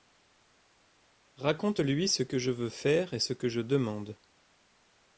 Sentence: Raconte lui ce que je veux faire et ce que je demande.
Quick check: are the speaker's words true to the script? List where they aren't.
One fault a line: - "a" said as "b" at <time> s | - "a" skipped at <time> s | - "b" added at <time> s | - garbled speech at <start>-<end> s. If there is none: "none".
none